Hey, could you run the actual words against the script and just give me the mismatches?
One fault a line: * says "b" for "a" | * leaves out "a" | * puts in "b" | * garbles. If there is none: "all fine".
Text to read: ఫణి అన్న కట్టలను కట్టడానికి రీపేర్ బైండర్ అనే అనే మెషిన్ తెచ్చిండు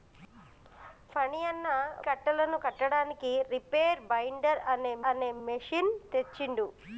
all fine